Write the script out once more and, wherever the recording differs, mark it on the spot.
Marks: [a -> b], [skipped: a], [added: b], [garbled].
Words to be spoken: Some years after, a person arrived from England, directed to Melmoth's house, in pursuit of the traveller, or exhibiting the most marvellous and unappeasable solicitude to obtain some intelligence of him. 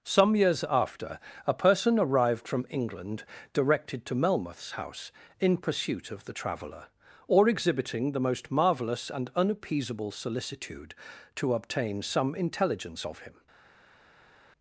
Some years after, a person arrived from England, directed to Melmoth's house, in pursuit of the traveller, or exhibiting the most marvellous and unappeasable solicitude to obtain some intelligence of him.